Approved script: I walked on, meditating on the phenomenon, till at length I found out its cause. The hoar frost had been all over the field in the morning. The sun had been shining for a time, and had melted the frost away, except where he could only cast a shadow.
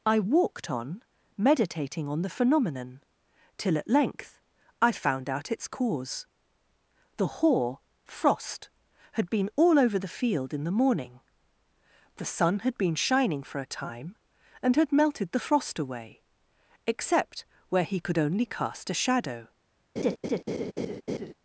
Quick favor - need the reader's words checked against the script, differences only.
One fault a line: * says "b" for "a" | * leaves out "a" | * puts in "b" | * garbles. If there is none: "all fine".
all fine